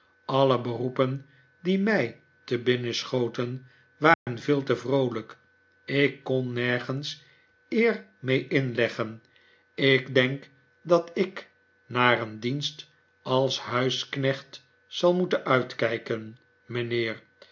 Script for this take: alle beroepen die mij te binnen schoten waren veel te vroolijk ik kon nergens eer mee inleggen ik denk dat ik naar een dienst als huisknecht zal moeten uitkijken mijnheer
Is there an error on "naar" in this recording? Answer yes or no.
no